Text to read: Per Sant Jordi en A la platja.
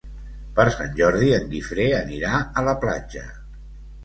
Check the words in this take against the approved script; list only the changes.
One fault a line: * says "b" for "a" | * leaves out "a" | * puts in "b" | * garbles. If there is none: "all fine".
* puts in "Guifré anirà"